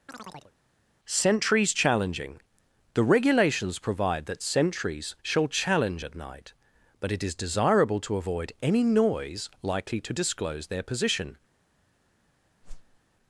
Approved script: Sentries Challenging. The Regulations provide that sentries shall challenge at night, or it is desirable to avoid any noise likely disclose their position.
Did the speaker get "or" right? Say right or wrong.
wrong